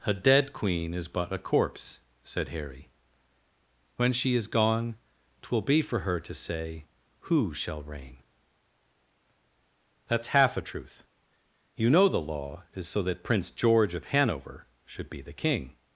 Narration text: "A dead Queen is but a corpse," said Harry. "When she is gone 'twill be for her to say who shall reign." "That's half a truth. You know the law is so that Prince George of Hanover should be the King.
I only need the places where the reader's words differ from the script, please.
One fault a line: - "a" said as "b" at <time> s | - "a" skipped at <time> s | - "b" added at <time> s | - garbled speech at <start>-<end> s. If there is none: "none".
none